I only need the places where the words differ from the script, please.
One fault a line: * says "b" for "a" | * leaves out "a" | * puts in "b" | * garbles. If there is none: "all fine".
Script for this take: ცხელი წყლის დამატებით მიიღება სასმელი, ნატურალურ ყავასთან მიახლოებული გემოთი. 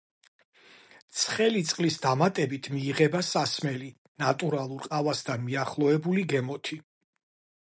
all fine